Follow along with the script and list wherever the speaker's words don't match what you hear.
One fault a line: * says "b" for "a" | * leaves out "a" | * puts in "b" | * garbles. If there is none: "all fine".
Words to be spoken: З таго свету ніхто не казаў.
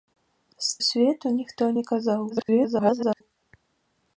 * leaves out "таго"
* garbles